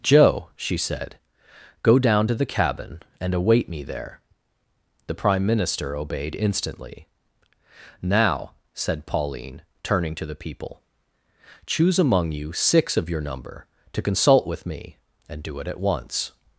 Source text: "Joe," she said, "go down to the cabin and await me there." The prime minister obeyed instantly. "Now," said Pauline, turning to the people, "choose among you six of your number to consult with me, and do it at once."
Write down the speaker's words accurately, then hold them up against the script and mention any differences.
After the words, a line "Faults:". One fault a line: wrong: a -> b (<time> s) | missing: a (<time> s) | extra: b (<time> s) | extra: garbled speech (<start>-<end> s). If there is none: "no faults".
"Joe," she said, "go down to the cabin and await me there." The prime minister obeyed instantly. "Now," said Pauline, turning to the people, "choose among you six of your number to consult with me, and do it at once."
Faults:
no faults